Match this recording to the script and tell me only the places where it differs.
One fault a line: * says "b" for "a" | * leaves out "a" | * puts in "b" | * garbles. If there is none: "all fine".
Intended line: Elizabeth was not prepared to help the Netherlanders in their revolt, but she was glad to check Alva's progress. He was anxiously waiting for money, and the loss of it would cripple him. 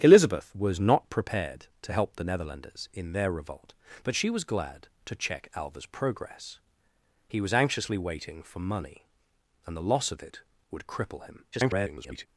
* garbles